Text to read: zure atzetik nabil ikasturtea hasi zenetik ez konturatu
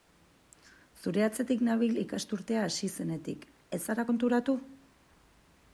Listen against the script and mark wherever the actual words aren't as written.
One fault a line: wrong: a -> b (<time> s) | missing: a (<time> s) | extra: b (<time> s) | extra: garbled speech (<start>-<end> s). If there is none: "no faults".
extra: zara (3.9 s)